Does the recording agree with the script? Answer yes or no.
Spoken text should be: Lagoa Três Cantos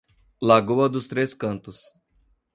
no